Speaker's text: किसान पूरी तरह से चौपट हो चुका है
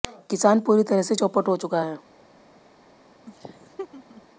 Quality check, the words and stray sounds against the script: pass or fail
fail